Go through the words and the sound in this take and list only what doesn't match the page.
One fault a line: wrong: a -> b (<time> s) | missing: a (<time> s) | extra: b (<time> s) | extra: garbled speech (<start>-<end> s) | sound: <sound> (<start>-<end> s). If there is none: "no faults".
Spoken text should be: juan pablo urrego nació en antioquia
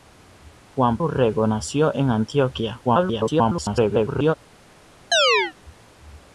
missing: pablo (1.0 s)
extra: garbled speech (2.8-4.4 s)
sound: chirp (5.1-5.5 s)